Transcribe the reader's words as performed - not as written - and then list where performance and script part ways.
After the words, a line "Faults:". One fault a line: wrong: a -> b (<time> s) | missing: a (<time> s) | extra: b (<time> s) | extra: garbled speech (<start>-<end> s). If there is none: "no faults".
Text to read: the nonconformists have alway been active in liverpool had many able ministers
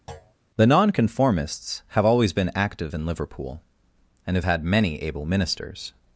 the nonconformists have always been active in liverpool and have had many able ministers
Faults:
wrong: alway -> always (2.0 s)
extra: and have (4.3 s)